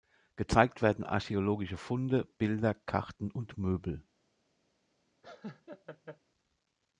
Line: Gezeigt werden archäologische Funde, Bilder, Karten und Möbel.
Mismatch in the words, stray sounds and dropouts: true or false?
true